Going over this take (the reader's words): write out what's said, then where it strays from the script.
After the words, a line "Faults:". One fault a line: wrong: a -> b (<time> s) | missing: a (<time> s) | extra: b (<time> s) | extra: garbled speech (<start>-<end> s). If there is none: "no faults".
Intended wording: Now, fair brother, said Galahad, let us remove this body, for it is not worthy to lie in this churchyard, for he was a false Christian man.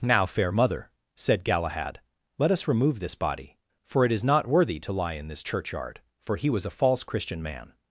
Now, fair mother, said Galahad, let us remove this body, for it is not worthy to lie in this churchyard, for he was a false Christian man.
Faults:
wrong: brother -> mother (0.5 s)